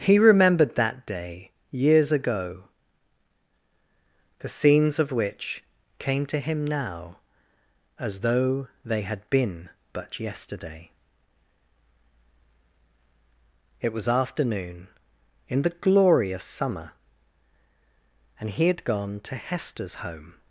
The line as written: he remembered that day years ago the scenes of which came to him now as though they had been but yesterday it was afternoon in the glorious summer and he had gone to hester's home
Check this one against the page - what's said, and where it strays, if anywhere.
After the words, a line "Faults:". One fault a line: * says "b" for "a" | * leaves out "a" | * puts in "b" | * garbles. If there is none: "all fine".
he remembered that day years ago the scenes of which came to him now as though they had been but yesterday it was afternoon in the glorious summer and he had gone to hester's home
Faults:
all fine